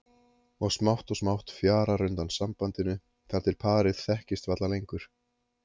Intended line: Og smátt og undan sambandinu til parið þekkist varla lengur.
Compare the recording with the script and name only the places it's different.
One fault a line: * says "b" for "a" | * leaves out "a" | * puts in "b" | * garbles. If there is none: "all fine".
* puts in "smátt fjarar"
* puts in "þar"